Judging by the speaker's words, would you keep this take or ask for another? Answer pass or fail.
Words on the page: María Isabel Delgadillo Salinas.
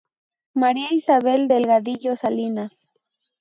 pass